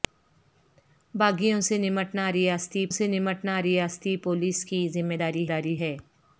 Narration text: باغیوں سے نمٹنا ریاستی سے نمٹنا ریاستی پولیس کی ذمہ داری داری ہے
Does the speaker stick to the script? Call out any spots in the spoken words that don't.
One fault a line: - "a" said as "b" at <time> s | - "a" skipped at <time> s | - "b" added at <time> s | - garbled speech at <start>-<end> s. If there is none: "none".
none